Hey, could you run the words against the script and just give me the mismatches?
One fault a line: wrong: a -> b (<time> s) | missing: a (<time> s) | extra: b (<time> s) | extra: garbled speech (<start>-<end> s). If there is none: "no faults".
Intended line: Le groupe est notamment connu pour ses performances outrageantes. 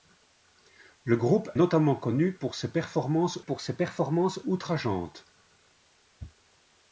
missing: est (1.5 s)
extra: pour ses performances (3.4 s)